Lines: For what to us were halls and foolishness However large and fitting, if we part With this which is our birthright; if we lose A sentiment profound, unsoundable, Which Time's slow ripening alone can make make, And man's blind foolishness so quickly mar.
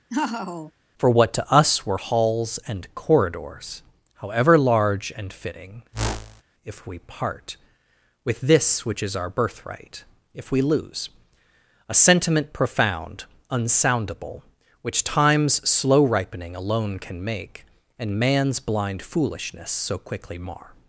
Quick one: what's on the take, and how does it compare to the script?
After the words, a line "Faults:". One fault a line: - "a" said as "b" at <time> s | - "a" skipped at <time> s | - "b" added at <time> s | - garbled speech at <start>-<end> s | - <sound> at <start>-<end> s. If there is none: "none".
For what to us were halls and corridors However large and fitting, if we part With this which is our birthright; if we lose A sentiment profound, unsoundable, Which Time's slow ripening alone can make, And man's blind foolishness so quickly mar.
Faults:
- laugh at 0.1-0.7 s
- "foolishness" said as "corridors" at 2.9 s
- whoosh at 5.9-6.4 s
- "make" skipped at 17.7 s